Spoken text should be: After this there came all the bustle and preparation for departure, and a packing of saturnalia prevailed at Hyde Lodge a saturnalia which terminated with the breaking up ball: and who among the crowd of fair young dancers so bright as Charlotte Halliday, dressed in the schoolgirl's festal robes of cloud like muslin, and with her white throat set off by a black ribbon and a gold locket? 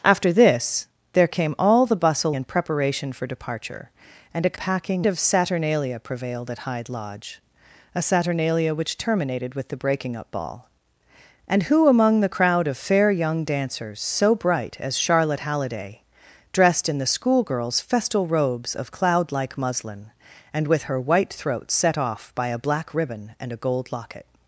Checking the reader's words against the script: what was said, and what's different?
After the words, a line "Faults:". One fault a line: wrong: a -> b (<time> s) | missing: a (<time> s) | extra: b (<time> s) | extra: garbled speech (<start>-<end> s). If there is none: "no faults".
After this there came all the bustle and preparation for departure, and a packing of saturnalia prevailed at Hyde Lodge a saturnalia which terminated with the breaking up ball: and who among the crowd of fair young dancers so bright as Charlotte Halliday, dressed in the schoolgirl's festal robes of cloud like muslin, and with her white throat set off by a black ribbon and a gold locket?
Faults:
no faults